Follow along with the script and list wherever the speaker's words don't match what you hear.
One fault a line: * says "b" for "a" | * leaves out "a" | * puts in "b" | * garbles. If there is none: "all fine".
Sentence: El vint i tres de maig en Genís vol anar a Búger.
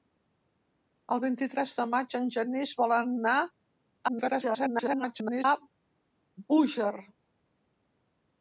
* garbles